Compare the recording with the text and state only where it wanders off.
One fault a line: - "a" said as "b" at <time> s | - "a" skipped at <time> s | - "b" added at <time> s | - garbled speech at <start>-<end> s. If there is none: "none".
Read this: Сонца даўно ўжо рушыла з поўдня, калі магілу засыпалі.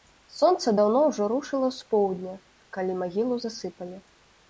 none